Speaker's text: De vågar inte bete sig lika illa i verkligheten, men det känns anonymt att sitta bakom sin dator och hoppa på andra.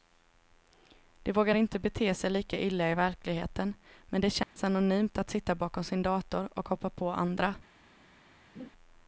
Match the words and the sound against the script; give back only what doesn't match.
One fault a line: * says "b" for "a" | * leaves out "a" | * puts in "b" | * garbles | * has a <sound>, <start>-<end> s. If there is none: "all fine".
* has a dropout, 4.4-4.6 s
* has a laugh, 8.5-8.7 s